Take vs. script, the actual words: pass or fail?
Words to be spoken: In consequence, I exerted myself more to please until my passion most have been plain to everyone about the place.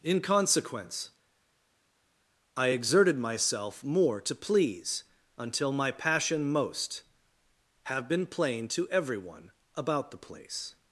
pass